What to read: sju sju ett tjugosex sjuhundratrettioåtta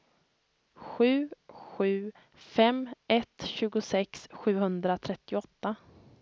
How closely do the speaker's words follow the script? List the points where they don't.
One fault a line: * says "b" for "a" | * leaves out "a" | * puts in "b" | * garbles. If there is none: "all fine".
* puts in "fem"